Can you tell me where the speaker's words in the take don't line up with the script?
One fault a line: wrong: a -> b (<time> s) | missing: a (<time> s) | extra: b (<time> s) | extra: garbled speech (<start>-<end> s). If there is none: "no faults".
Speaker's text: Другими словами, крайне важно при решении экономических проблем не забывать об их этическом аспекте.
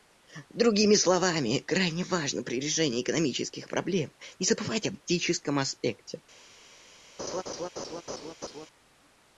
missing: их (5.0 s)